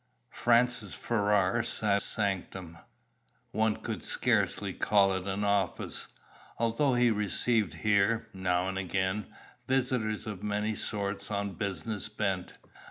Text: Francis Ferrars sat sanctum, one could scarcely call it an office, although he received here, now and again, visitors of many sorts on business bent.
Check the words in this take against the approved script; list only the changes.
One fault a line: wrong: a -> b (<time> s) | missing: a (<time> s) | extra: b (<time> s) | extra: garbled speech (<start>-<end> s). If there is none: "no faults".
no faults